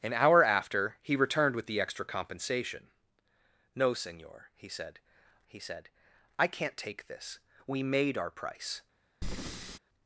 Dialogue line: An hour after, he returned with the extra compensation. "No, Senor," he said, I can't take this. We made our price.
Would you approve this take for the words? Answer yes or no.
no